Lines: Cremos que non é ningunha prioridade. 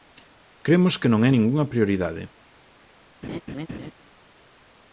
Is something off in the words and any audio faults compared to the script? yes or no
yes